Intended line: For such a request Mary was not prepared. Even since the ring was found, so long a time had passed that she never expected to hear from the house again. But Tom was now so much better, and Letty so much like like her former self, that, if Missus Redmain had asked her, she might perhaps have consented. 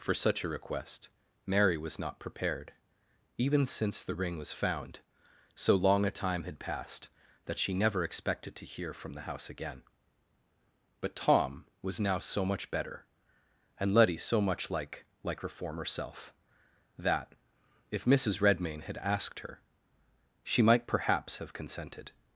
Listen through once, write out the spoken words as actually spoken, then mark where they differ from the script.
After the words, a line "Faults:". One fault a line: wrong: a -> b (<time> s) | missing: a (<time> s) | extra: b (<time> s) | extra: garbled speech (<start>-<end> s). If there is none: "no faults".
For such a request Mary was not prepared. Even since the ring was found, so long a time had passed that she never expected to hear from the house again. But Tom was now so much better, and Letty so much like like her former self, that, if Missus Redmain had asked her, she might perhaps have consented.
Faults:
no faults